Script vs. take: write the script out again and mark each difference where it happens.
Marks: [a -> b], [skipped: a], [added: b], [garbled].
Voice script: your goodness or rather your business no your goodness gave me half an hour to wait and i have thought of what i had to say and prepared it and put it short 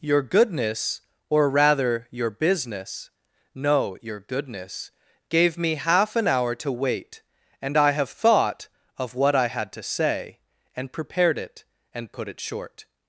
your goodness or rather your business no your goodness gave me half an hour to wait and i have thought of what i had to say and prepared it and put it short